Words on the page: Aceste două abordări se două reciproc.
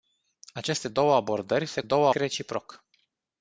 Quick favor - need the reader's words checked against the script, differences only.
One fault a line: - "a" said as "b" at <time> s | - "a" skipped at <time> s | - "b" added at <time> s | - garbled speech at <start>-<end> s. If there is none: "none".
none